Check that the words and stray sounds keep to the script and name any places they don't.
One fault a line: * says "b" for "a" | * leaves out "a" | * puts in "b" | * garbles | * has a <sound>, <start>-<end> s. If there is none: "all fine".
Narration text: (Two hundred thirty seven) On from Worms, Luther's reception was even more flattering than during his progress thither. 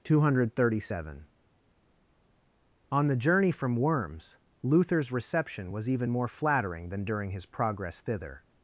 * puts in "the journey"